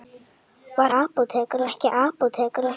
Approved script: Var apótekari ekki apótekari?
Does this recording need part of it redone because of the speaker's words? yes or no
no